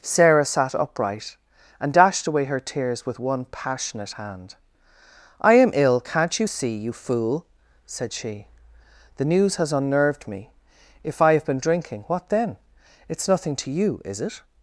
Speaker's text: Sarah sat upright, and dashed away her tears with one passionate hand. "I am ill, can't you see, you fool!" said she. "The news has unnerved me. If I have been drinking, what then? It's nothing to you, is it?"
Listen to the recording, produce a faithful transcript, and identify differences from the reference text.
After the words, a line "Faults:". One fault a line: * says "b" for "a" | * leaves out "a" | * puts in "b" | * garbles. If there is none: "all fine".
Sarah sat upright, and dashed away her tears with one passionate hand. "I am ill, can't you see, you fool!" said she. "The news has unnerved me. If I have been drinking, what then? It's nothing to you, is it?"
Faults:
all fine